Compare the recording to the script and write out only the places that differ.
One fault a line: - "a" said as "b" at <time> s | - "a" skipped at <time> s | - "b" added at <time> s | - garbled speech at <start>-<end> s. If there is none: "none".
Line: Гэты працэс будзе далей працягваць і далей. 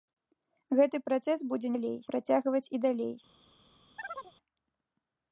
none